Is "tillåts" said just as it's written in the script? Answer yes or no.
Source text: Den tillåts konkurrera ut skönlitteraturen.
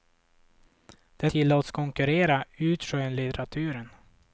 yes